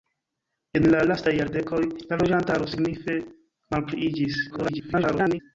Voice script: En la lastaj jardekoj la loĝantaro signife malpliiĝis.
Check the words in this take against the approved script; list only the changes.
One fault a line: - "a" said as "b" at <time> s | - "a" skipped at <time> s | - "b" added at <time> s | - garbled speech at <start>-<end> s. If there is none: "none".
- garbled speech at 4.5-5.4 s